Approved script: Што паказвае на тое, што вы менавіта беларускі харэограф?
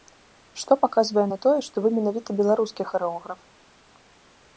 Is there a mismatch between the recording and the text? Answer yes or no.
no